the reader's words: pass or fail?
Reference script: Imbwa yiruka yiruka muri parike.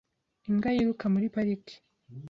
fail